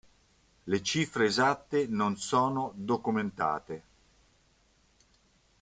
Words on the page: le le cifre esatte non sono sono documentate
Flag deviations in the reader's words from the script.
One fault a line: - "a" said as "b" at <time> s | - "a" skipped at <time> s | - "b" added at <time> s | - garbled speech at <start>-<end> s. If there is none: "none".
- "le" skipped at 0.8 s
- "sono" skipped at 2.7 s